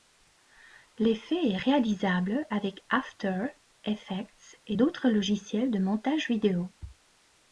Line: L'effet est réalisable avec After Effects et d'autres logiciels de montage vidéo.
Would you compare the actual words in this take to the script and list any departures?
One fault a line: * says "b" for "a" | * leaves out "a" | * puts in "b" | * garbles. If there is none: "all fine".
all fine